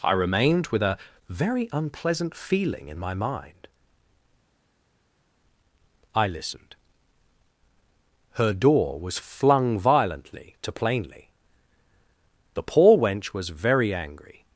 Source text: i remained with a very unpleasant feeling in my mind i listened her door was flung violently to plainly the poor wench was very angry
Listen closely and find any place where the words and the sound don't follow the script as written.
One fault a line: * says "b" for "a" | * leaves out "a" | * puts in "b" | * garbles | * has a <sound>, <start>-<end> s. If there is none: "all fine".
all fine